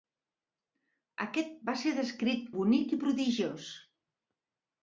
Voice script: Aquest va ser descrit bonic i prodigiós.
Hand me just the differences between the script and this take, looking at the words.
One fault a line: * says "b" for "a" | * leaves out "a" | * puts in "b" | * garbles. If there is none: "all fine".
all fine